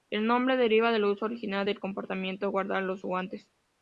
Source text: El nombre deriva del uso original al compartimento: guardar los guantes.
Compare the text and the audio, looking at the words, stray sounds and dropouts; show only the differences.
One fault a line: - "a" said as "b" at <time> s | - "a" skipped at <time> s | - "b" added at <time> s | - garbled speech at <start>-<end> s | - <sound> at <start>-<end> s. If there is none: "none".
- "al" said as "del" at 1.6 s